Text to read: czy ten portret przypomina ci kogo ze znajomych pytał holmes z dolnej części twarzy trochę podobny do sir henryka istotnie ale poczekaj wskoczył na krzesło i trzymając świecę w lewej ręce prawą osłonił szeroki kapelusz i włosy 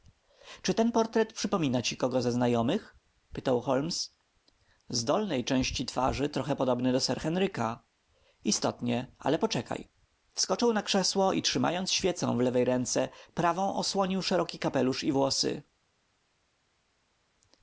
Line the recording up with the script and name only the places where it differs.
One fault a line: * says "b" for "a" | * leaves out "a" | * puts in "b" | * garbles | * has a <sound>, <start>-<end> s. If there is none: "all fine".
all fine